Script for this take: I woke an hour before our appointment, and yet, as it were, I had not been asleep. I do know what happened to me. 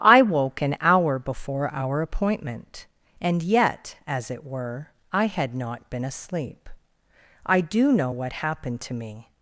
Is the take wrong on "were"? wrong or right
right